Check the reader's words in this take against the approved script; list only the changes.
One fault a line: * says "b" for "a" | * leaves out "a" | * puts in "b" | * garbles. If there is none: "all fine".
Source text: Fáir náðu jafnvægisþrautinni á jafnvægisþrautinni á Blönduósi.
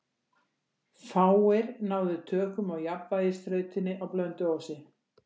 * says "tökum" for "jafnvægisþrautinni"